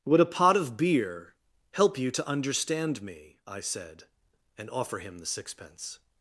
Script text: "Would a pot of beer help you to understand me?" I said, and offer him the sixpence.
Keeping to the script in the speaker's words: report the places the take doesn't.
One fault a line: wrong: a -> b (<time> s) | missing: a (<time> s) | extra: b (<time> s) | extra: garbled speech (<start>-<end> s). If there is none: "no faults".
no faults